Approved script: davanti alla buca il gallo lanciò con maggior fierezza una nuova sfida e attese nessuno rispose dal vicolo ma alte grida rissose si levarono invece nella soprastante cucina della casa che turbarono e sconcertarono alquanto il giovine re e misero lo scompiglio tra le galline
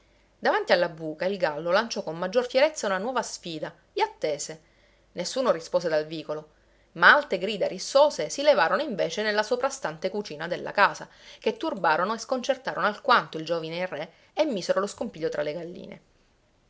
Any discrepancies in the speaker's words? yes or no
no